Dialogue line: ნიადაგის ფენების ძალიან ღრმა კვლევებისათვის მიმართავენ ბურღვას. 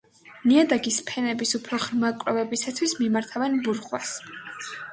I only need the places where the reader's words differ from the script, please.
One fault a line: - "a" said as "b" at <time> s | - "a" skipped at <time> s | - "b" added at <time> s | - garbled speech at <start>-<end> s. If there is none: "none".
- "ძალიან" said as "უფრო" at 1.6 s